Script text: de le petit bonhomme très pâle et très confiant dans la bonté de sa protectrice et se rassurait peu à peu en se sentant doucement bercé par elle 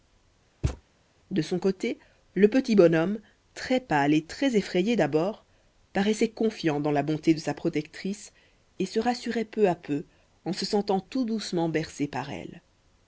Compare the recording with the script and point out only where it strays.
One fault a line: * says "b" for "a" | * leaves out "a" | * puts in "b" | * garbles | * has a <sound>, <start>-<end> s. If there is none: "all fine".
* has a thud, 0.6-0.8 s
* puts in "son côté"
* puts in "effrayé d'abord paraissait"
* puts in "tout"